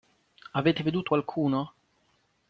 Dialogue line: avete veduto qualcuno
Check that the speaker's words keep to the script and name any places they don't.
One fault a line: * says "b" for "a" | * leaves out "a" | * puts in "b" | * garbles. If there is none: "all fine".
all fine